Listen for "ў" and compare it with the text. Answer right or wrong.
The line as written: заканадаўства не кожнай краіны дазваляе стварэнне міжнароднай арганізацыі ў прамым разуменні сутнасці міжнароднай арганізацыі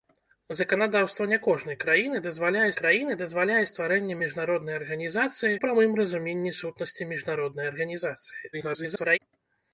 wrong